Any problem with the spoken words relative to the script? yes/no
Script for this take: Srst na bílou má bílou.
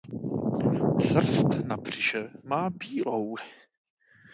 yes